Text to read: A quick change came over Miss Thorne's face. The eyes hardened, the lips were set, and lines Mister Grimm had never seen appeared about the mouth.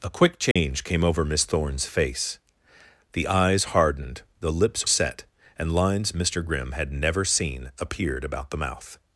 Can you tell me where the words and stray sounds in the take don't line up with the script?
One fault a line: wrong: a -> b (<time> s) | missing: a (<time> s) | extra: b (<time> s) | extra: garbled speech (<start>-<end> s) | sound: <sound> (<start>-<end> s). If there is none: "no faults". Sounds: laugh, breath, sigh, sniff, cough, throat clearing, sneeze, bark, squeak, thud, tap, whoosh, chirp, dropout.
sound: dropout (0.5-0.6 s)
missing: were (4.9 s)